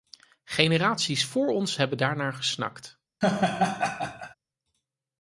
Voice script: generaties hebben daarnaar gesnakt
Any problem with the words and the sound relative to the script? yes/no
yes